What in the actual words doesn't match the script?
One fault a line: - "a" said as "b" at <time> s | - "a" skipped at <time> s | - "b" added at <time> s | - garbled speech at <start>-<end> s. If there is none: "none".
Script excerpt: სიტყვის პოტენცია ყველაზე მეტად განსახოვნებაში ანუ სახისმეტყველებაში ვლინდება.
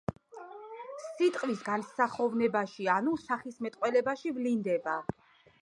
- "პოტენცია ყველაზე მეტად" skipped at 1.6 s